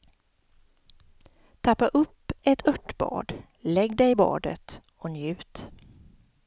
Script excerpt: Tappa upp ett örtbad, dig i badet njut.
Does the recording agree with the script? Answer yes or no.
no